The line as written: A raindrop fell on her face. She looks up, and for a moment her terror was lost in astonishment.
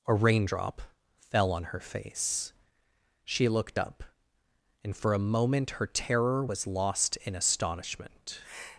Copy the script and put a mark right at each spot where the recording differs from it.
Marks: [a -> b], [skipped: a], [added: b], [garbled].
A raindrop fell on her face. She [looks -> looked] up, and for a moment her terror was lost in astonishment.